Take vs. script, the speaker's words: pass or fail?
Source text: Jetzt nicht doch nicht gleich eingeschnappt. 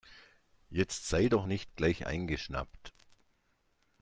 fail